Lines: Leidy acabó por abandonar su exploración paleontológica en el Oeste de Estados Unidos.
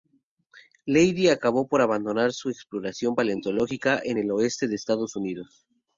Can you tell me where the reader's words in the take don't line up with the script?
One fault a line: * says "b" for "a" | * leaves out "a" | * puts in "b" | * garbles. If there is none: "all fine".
all fine